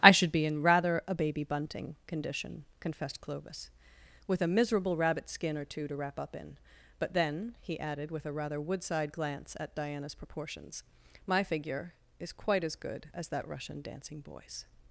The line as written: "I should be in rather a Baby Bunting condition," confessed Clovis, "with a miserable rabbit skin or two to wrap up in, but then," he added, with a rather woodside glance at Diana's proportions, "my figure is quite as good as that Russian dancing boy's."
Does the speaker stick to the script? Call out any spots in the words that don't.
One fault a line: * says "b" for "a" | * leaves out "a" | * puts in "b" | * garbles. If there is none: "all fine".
all fine